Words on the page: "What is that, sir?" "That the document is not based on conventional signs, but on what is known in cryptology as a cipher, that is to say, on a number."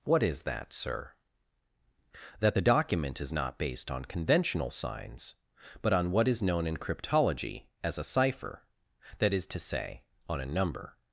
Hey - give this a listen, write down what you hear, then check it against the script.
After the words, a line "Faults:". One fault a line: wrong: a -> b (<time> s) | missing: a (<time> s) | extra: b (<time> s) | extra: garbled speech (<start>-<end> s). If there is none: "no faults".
"What is that, sir?" "That the document is not based on conventional signs, but on what is known in cryptology as a cipher, that is to say, on a number."
Faults:
no faults